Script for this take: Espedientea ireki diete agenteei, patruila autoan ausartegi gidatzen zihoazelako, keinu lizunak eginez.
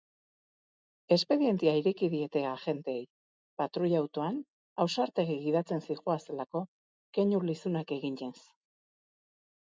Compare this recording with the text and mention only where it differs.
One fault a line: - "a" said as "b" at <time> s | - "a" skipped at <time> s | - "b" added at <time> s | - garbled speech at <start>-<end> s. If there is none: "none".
none